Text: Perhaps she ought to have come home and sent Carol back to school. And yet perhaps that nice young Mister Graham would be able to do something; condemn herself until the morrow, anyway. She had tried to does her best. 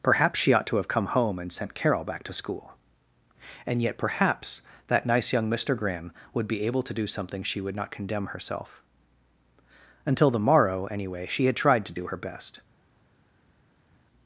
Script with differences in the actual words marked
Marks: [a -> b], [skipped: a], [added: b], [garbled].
Perhaps she ought to have come home and sent Carol back to school. And yet perhaps that nice young Mister Graham would be able to do something; [added: she would not] condemn herself until the morrow, anyway. She had tried to [does -> do] her best.